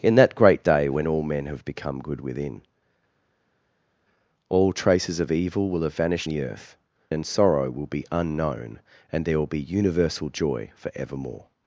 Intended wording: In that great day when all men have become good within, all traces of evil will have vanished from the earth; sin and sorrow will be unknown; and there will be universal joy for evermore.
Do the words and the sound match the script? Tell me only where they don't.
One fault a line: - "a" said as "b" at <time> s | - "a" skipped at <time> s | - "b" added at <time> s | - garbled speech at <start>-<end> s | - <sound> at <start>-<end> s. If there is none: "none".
- "from" skipped at 6.3 s
- "sin" skipped at 6.8 s